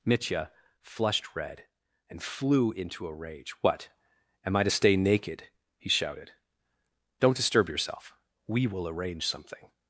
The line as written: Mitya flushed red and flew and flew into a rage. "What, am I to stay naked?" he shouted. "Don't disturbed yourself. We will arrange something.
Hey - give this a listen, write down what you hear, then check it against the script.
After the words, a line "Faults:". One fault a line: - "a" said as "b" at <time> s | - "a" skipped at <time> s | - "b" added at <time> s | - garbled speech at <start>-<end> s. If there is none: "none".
Mitya flushed red and flew into a rage. "What, am I to stay naked?" he shouted. "Don't disturb yourself. We will arrange something.
Faults:
- "and flew" skipped at 2.7 s
- "disturbed" said as "disturb" at 7.4 s